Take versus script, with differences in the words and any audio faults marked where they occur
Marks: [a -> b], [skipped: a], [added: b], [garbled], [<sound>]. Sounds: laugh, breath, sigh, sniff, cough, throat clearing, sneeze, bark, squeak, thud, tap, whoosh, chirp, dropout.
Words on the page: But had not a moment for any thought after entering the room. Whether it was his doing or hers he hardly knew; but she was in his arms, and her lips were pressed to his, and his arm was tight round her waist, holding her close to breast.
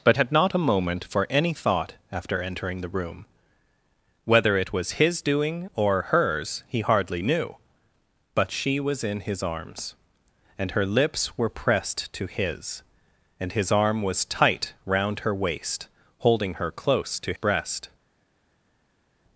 But had not a moment for any thought after entering the room. Whether it was his doing or hers he hardly knew; but she was in his arms, and her lips were pressed to his, and his arm was tight round her waist, holding her close to breast.